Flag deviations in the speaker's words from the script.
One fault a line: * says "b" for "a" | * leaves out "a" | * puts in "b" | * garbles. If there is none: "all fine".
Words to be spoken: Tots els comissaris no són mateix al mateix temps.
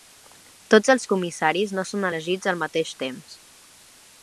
* says "elegits" for "mateix"